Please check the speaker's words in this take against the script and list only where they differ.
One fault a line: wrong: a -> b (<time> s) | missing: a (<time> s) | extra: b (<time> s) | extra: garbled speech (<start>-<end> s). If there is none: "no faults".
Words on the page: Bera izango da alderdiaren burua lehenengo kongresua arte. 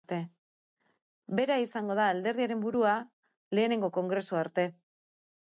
no faults